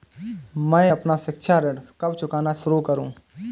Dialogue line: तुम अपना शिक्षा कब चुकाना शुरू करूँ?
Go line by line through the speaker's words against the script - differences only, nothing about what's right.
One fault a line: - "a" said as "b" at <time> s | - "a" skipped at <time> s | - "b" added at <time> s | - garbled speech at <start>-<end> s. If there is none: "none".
- "तुम" said as "मैं" at 0.7 s
- "ऋण" added at 1.6 s